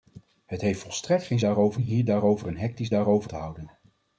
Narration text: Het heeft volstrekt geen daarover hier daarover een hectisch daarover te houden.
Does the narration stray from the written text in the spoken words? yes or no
no